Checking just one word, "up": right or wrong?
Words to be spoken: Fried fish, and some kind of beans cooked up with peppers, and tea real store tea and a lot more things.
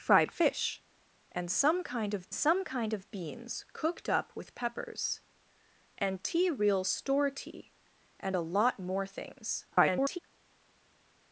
right